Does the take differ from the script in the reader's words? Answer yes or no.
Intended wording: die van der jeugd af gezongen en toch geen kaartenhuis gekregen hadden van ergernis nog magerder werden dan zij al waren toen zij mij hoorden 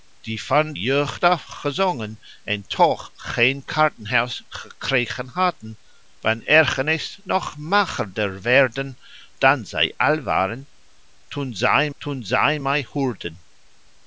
yes